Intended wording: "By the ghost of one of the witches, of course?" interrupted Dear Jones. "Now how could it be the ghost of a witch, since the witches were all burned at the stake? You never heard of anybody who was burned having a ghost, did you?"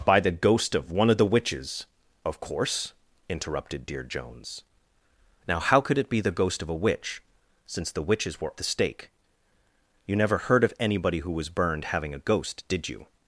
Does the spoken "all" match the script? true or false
false